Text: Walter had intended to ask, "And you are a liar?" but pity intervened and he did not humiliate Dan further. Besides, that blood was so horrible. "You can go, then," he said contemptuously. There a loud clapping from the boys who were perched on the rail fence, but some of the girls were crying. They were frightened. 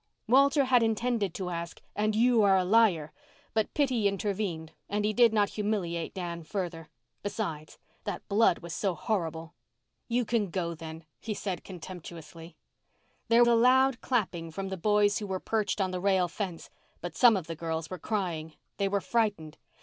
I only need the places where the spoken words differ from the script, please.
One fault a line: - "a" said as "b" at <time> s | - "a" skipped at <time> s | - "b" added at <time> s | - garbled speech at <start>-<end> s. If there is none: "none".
none